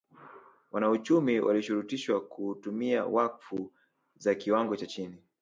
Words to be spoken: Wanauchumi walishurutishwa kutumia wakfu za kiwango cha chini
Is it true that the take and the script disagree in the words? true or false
false